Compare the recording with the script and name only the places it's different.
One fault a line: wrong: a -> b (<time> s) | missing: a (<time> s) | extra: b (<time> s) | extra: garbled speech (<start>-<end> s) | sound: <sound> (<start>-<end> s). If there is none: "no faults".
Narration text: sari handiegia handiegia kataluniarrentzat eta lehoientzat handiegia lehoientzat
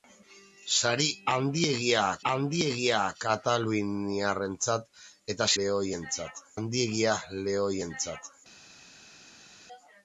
no faults